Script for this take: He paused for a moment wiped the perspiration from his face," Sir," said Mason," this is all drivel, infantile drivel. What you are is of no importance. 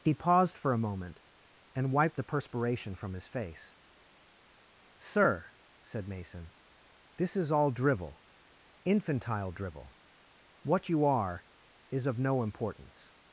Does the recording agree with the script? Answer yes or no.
no